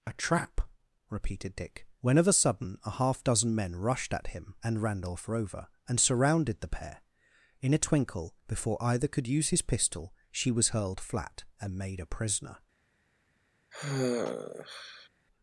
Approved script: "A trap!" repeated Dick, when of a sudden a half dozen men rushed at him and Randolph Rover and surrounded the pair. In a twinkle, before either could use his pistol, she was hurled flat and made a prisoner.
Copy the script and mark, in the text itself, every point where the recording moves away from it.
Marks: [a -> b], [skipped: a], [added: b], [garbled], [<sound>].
"A trap!" repeated Dick, when of a sudden a half dozen men rushed at him and Randolph Rover and surrounded the pair. In a twinkle, before either could use his pistol, she was hurled flat and made a prisoner. [sigh]